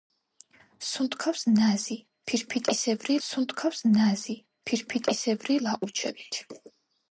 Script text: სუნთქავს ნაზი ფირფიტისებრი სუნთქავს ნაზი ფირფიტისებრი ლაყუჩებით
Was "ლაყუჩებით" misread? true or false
false